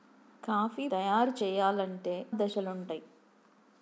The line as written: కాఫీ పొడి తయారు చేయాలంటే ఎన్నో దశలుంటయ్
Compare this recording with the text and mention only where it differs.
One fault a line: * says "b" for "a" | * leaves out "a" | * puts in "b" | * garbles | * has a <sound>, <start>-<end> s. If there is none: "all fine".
* leaves out "పొడి"
* leaves out "ఎన్నో"